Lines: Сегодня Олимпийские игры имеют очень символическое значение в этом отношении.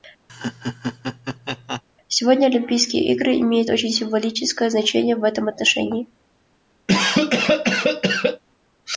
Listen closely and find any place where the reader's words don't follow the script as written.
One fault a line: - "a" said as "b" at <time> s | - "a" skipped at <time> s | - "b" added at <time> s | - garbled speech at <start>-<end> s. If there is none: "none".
none